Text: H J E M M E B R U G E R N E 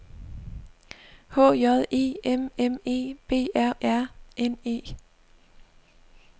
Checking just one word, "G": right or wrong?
wrong